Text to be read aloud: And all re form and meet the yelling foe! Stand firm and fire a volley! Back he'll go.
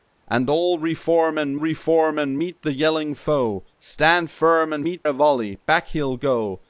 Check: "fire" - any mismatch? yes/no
yes